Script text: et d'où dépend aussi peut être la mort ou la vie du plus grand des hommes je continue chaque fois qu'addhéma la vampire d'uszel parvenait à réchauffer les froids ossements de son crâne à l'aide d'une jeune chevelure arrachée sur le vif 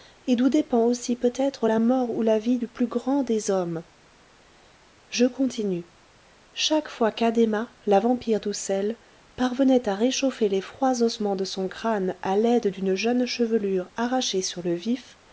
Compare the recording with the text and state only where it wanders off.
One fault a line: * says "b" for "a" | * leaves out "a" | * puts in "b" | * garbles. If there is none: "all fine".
all fine